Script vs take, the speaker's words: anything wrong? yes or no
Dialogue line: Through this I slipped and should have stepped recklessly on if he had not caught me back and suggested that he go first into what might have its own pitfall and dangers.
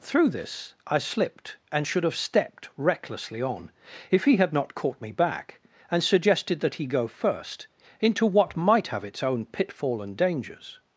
no